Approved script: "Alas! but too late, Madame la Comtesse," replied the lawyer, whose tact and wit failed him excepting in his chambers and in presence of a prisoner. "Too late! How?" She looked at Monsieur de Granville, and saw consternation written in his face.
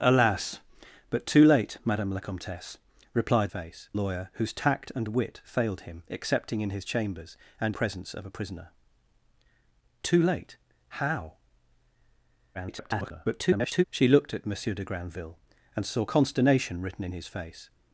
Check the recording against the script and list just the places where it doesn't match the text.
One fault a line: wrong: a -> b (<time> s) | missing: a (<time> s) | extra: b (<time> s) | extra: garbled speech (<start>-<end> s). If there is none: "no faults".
wrong: the -> face (3.5 s)
missing: in (7.8 s)
extra: garbled speech (12.5-13.8 s)